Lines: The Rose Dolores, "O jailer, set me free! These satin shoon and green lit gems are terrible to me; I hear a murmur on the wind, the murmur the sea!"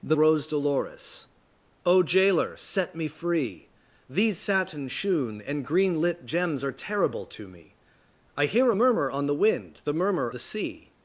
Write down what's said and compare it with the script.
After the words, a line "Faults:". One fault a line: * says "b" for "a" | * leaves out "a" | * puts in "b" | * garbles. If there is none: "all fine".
The Rose Dolores, "O jailer, set me free! These satin shoon and green lit gems are terrible to me; I hear a murmur on the wind, the murmur the sea!"
Faults:
all fine